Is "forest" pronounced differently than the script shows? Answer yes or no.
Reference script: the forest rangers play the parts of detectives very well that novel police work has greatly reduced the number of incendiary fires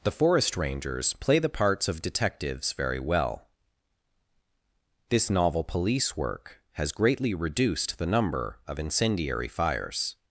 no